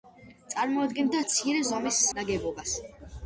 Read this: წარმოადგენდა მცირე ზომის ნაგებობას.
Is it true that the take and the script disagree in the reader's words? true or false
false